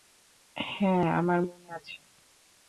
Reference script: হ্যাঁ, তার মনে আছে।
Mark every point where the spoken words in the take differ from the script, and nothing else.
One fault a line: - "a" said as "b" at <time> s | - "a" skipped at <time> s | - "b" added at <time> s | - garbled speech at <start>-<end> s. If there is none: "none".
- "তার" said as "আমার" at 1.2 s